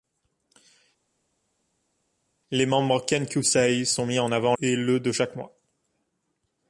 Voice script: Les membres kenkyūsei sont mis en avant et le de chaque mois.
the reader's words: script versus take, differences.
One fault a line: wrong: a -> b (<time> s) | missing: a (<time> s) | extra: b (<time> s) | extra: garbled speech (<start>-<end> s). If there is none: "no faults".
no faults